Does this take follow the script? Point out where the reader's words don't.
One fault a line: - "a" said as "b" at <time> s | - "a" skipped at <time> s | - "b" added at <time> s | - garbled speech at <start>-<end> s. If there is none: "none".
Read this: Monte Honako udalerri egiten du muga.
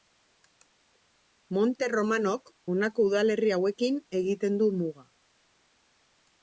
- "Romanok" added at 1.9 s
- "hauekin" added at 3.6 s